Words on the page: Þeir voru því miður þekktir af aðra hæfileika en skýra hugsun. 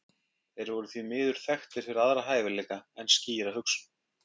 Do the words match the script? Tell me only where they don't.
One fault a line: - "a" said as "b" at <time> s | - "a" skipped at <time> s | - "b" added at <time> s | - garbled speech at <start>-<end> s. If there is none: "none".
- "af" said as "fyrir" at 1.9 s